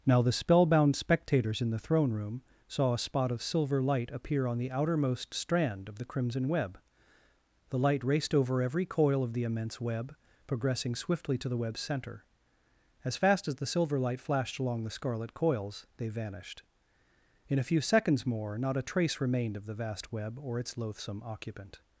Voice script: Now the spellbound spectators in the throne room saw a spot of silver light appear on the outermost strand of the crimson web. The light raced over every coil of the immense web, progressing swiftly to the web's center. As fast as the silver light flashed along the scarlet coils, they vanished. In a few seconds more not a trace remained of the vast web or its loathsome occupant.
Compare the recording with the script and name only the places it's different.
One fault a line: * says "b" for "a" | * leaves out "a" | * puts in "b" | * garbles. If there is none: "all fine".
all fine